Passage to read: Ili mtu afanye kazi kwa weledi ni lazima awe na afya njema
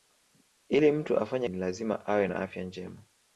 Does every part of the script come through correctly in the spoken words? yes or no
no